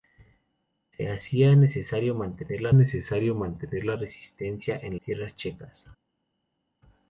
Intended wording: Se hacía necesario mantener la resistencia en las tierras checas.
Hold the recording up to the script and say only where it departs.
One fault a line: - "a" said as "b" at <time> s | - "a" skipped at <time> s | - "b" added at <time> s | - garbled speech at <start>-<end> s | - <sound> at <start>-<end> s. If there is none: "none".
- "necesario mantener la" added at 2.7 s
- "las" skipped at 5.0 s